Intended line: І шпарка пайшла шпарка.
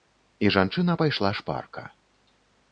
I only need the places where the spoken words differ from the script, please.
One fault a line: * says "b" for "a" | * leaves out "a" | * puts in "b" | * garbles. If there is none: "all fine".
* says "жанчына" for "шпарка"